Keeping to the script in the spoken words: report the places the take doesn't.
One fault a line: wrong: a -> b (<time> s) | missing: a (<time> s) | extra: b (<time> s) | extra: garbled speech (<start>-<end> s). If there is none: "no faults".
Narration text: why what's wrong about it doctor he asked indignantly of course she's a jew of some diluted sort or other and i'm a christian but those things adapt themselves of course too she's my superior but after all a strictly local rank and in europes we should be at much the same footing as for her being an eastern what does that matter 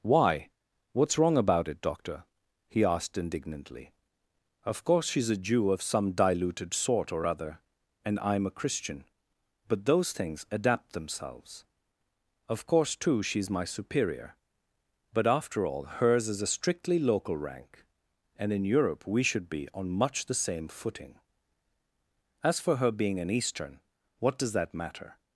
extra: hers is (15.8 s)
wrong: europes -> europe (18.6 s)
wrong: at -> on (19.7 s)